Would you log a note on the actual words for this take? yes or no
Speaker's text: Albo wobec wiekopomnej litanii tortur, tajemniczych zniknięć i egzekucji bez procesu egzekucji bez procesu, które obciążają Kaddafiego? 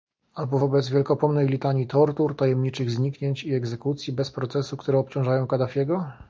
yes